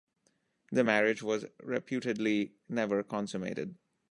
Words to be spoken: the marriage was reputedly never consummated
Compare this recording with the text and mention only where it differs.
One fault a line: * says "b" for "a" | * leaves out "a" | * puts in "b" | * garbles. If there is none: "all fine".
all fine